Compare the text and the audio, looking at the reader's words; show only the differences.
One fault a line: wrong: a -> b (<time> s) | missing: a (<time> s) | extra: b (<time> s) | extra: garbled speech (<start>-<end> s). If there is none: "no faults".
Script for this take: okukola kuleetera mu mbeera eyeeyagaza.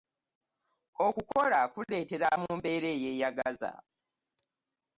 no faults